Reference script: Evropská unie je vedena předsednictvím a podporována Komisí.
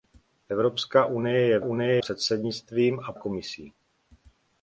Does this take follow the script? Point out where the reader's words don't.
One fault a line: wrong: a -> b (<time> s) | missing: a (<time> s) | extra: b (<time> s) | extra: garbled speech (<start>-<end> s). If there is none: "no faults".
wrong: vedena -> unie (1.6 s)
missing: podporována (3.1 s)